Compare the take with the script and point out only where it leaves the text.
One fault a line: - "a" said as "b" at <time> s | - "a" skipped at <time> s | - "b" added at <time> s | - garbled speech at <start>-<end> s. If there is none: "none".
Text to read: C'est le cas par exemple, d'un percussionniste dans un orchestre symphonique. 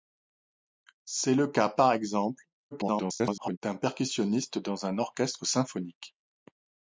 - garbled speech at 2.7-3.6 s